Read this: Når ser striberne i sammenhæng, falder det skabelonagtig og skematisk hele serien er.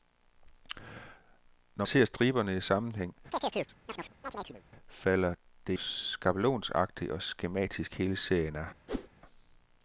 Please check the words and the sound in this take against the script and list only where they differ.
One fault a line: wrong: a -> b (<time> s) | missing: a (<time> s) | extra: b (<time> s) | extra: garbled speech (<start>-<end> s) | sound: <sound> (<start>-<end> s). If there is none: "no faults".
sound: chirp (3.3-4.6 s)
sound: whoosh (8.9-9.1 s)